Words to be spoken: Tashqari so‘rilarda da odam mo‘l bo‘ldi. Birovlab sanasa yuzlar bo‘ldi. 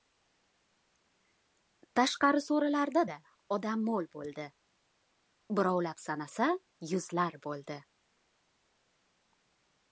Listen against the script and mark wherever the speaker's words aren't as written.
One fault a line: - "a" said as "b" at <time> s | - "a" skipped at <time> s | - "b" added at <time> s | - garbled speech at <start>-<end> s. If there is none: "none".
none